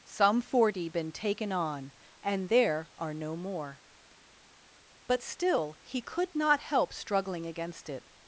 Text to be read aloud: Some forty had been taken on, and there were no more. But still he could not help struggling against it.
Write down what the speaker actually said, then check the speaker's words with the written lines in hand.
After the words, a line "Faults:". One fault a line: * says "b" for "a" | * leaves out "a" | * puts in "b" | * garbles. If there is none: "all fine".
Some forty been taken on, and there are no more. But still he could not help struggling against it.
Faults:
* leaves out "had"
* says "are" for "were"